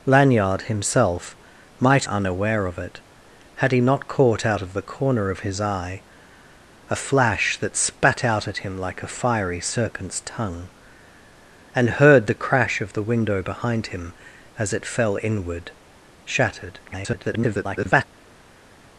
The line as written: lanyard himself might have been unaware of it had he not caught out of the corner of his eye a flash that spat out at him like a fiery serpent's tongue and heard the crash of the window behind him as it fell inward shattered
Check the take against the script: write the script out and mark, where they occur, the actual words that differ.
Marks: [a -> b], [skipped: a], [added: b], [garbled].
lanyard himself might [skipped: have been] unaware of it had he not caught out of the corner of his eye a flash that spat out at him like a fiery serpent's tongue and heard the crash of the window behind him as it fell inward shattered [garbled]